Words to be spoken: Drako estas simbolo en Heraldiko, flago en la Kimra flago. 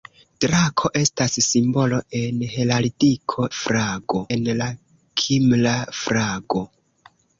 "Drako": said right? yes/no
yes